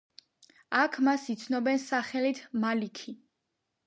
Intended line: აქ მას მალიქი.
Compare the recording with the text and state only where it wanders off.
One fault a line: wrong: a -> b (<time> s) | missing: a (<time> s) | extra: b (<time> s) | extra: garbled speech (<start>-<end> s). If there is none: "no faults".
extra: იცნობენ სახელით (1.3 s)